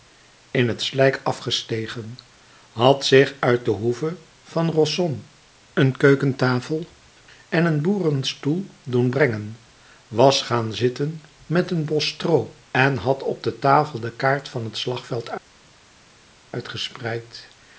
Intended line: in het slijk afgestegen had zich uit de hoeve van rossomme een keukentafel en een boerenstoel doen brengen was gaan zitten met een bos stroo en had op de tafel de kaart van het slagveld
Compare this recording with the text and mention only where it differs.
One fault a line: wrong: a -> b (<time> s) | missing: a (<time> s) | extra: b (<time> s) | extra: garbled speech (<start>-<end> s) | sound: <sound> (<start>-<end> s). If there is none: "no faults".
no faults